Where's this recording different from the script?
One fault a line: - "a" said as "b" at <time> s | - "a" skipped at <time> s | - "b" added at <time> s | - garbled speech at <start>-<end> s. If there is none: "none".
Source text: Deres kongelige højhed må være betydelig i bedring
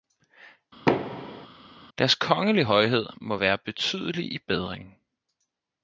none